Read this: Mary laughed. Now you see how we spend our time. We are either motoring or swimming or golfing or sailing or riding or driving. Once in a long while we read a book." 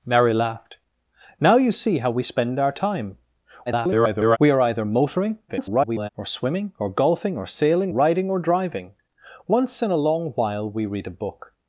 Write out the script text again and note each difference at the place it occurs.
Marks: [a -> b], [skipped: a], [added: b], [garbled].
Mary laughed. Now you see how we spend our time. [garbled] We are either motoring [garbled] or swimming or golfing or sailing [skipped: or] riding or driving. Once in a long while we read a book."